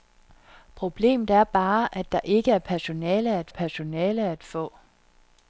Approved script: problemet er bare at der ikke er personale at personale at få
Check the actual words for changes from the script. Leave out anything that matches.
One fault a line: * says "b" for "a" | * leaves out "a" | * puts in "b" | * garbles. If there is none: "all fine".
all fine